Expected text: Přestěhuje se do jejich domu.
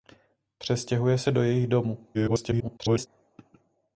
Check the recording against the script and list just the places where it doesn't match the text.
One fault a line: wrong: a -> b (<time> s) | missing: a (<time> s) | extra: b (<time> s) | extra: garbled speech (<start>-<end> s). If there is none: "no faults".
extra: garbled speech (2.1-3.1 s)